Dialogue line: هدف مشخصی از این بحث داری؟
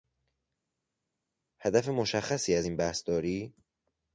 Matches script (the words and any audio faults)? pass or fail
pass